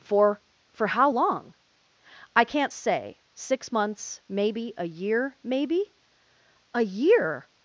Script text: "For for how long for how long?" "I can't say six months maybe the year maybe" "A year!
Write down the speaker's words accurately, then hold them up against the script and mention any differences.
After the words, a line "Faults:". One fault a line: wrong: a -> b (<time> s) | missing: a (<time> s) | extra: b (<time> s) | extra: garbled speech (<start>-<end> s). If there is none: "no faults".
"For for how long?" "I can't say six months maybe a year maybe" "A year!
Faults:
missing: for how long (1.5 s)
wrong: the -> a (4.8 s)